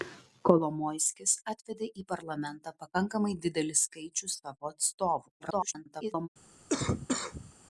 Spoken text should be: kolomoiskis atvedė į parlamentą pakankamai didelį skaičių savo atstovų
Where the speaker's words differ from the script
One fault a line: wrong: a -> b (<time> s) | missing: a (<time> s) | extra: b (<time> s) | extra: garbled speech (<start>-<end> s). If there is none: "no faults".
extra: garbled speech (5.4-6.3 s)